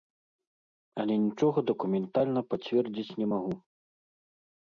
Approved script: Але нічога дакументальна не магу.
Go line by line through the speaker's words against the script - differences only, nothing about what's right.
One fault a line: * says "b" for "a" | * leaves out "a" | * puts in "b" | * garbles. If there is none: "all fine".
* puts in "пацвердзіць"